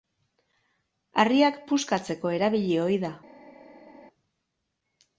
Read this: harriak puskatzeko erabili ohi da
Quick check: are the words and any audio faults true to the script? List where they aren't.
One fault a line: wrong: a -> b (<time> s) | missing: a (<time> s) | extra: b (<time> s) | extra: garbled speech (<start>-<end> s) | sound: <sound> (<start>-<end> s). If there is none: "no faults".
no faults